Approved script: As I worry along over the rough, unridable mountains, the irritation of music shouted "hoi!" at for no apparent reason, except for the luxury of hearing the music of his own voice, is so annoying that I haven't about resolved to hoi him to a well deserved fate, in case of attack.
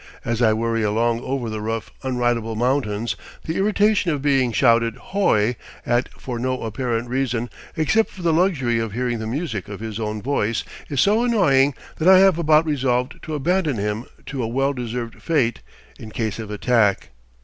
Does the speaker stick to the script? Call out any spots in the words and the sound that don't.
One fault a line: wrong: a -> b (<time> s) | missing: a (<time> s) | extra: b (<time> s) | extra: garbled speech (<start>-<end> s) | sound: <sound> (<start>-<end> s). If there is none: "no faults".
wrong: music -> being (4.2 s)
wrong: haven't -> have (12.2 s)
wrong: hoi -> abandon (13.3 s)